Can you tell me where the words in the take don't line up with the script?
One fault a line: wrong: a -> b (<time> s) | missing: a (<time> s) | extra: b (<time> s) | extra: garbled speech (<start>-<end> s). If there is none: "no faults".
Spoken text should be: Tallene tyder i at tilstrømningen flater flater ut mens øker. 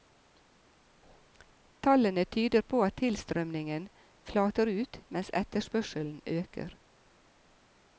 wrong: i -> på (2.6 s)
missing: flater (4.7 s)
extra: etterspørselen (5.4 s)